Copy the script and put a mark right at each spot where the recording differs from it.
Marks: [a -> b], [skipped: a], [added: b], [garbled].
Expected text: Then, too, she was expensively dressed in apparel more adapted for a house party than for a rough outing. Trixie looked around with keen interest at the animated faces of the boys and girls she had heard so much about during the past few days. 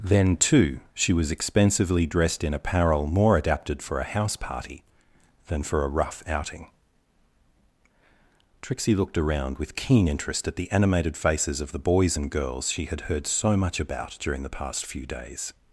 Then, too, she was expensively dressed in apparel more adapted for a house party than for a rough outing. Trixie looked around with keen interest at the animated faces of the boys and girls she had heard so much about during the past few days.